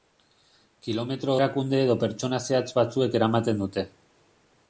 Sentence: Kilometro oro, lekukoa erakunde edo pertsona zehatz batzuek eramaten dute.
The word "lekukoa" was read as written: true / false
false